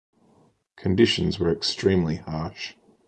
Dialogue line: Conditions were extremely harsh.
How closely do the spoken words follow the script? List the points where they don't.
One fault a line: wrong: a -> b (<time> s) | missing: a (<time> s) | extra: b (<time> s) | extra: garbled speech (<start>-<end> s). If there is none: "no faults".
no faults